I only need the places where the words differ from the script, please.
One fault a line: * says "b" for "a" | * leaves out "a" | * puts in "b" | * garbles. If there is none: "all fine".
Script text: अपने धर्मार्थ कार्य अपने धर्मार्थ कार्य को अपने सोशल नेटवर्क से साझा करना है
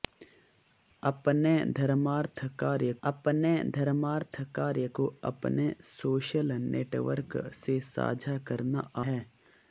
all fine